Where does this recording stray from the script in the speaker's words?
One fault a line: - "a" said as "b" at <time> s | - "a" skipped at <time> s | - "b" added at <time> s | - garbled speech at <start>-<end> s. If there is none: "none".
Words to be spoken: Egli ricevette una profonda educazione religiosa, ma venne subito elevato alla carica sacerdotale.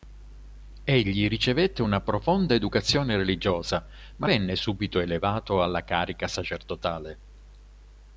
none